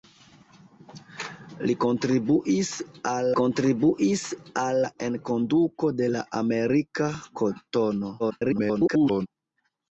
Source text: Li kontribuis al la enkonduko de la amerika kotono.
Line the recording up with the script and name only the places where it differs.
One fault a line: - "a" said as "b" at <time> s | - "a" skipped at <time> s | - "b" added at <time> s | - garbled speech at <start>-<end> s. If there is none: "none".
- "kontribuis al" added at 3.4 s
- garbled speech at 8.2-9.3 s